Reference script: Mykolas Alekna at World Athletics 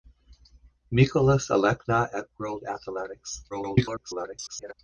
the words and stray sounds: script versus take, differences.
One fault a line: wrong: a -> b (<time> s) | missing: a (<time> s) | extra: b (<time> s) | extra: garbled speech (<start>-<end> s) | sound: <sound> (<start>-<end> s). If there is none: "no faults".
extra: garbled speech (3.5-4.7 s)